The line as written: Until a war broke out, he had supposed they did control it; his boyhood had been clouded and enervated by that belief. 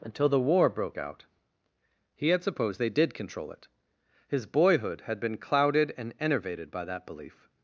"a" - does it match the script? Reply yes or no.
no